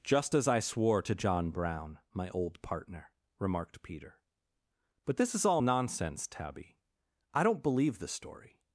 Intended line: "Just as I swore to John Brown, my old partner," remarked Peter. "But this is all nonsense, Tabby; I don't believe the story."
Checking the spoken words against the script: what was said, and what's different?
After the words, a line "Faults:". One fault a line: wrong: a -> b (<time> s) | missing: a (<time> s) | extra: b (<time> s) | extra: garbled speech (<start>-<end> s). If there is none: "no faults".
"Just as I swore to John Brown, my old partner," remarked Peter. "But this is all nonsense, Tabby; I don't believe the story."
Faults:
no faults